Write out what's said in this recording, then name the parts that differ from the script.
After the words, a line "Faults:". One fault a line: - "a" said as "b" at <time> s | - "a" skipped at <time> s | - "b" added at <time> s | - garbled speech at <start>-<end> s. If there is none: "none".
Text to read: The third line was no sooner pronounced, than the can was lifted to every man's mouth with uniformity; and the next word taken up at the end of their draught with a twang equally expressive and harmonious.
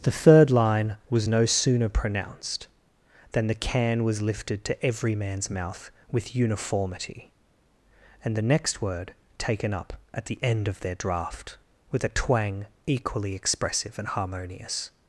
The third line was no sooner pronounced, than the can was lifted to every man's mouth with uniformity; and the next word taken up at the end of their draught with a twang equally expressive and harmonious.
Faults:
none